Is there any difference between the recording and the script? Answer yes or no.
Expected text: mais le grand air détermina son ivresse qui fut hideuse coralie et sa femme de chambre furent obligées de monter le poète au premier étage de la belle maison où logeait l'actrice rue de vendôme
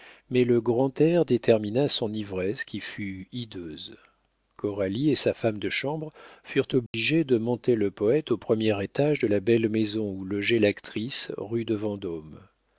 no